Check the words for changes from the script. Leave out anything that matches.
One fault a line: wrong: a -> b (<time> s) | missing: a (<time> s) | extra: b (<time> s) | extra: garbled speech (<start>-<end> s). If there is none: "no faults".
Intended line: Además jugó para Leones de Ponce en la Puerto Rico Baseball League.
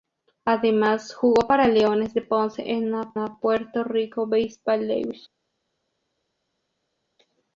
extra: la (3.1 s)